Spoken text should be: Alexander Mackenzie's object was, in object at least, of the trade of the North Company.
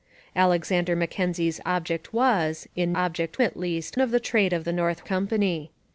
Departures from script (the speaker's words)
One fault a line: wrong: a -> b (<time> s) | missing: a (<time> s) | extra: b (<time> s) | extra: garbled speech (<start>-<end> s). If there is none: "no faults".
no faults